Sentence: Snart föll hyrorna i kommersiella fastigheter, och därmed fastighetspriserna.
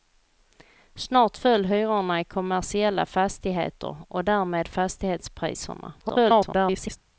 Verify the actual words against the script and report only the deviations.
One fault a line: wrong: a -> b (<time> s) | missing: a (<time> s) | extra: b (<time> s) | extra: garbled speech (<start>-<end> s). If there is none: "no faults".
extra: garbled speech (6.0-7.0 s)